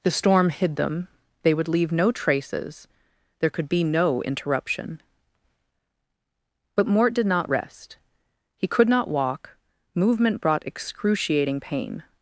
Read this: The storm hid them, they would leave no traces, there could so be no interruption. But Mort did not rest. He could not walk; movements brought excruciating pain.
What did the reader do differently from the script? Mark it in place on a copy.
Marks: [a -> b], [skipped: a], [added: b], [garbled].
The storm hid them, they would leave no traces, there could [skipped: so] be no interruption. But Mort did not rest. He could not walk; [movements -> movement] brought excruciating pain.